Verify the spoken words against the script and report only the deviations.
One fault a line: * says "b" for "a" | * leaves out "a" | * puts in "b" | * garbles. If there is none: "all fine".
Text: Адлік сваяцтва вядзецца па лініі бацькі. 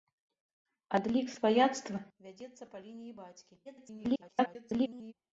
* garbles